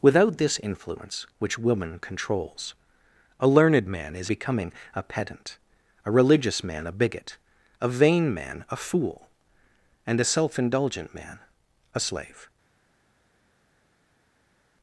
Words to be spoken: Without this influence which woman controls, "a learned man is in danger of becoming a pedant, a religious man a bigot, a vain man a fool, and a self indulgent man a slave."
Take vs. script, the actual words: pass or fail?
fail